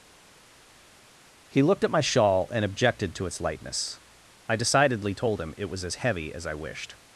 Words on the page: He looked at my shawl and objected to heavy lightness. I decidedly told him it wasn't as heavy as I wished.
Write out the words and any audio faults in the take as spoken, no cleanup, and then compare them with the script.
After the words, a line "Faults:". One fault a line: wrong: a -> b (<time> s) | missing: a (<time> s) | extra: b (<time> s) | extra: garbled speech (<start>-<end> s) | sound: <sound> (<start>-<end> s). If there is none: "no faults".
He looked at my shawl and objected to its lightness. I decidedly told him it was as heavy as I wished.
Faults:
wrong: heavy -> its (3.2 s)
wrong: wasn't -> was (5.7 s)